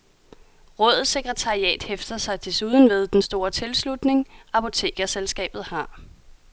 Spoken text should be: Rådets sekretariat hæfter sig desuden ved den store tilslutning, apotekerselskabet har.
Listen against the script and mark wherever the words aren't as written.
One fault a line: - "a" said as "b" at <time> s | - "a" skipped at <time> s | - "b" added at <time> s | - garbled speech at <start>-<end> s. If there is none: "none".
none